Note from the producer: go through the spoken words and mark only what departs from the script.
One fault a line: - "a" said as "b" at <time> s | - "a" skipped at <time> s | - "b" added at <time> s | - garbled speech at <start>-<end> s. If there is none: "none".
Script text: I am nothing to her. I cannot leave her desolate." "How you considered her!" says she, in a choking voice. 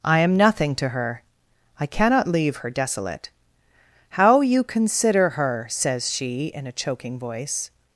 - "considered" said as "consider" at 4.6 s